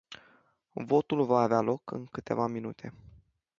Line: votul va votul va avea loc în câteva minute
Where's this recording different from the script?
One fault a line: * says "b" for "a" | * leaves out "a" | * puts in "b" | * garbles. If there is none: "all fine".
* leaves out "votul va"